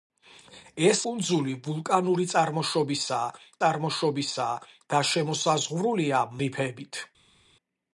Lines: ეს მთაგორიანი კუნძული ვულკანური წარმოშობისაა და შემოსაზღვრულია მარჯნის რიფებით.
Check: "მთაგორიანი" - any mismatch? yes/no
yes